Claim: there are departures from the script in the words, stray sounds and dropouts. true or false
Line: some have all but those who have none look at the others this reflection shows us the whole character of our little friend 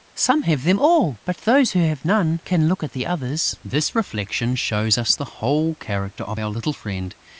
true